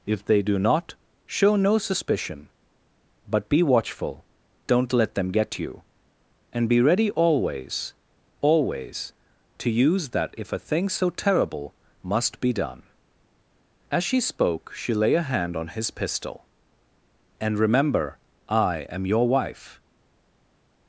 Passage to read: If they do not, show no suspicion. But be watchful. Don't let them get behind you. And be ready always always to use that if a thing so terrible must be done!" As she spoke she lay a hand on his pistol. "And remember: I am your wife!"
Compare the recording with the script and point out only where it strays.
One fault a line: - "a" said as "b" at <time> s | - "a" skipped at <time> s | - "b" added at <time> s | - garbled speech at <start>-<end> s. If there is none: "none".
- "behind" skipped at 5.6 s